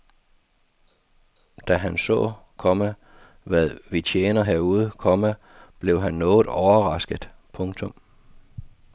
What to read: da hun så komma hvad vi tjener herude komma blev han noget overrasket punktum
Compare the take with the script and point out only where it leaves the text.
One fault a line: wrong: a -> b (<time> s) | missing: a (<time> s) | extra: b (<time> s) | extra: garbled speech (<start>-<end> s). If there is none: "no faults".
wrong: hun -> han (1.8 s)